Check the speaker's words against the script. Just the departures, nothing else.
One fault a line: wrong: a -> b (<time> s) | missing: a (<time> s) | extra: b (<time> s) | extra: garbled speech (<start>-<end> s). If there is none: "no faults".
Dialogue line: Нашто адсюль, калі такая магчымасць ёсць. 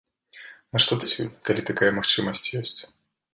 no faults